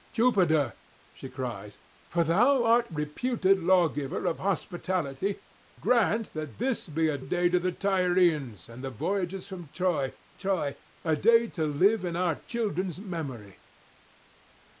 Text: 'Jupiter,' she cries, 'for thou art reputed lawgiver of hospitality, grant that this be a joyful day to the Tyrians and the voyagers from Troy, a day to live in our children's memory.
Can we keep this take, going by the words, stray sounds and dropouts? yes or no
no